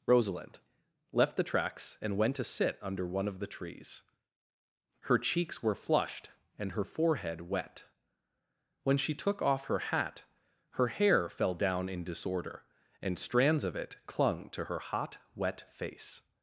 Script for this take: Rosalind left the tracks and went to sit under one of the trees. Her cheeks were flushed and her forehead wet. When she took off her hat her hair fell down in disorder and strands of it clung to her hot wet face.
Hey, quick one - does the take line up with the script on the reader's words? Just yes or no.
yes